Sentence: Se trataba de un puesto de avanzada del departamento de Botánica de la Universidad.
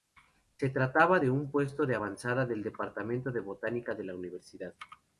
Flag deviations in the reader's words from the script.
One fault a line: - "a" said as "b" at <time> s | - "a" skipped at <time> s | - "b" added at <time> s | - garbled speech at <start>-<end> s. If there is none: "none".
none